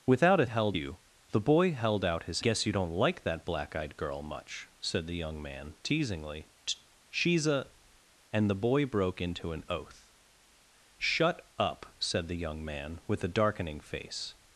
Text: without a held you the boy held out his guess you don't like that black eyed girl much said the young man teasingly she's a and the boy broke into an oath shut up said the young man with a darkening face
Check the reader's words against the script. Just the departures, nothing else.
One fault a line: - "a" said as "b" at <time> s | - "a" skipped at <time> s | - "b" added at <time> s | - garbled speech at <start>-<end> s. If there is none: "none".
none